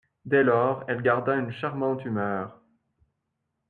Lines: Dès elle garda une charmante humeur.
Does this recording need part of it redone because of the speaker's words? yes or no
yes